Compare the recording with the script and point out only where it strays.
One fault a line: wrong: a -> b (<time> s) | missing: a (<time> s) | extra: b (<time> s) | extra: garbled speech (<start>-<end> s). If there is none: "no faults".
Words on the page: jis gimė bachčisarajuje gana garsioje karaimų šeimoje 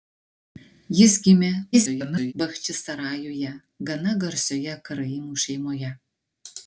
extra: garbled speech (1.7-2.3 s)